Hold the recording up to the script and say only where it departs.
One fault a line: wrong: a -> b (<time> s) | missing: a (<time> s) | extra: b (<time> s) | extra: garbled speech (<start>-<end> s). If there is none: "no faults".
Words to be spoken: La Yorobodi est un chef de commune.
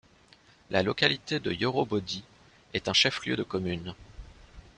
extra: localité de (0.8 s)
extra: lieu (3.2 s)